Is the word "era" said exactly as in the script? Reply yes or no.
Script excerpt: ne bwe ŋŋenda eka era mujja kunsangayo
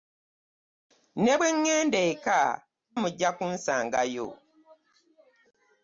no